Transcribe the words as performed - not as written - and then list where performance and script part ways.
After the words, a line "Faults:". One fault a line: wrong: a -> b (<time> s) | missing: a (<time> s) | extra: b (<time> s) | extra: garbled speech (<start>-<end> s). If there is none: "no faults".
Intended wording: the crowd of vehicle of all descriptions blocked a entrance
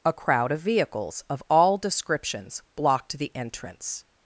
a crowd of vehicles of all descriptions blocked the entrance
Faults:
wrong: the -> a (0.0 s)
wrong: vehicle -> vehicles (0.6 s)
wrong: a -> the (3.1 s)